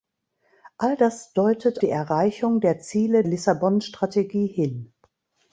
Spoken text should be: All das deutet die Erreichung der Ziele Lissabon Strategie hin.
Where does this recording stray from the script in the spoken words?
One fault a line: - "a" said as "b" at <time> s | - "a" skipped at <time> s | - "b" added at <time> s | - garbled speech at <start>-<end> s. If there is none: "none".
none